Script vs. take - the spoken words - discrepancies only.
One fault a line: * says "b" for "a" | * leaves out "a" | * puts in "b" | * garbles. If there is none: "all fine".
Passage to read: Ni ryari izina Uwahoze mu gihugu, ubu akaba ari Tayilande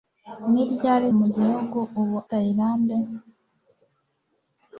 * leaves out "izina Uwahoze"
* leaves out "akaba ari"